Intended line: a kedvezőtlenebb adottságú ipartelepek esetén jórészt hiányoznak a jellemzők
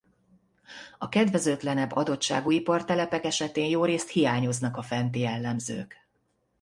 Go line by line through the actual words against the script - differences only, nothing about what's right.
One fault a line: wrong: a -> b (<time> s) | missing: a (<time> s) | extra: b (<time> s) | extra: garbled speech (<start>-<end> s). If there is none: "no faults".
extra: fenti (4.8 s)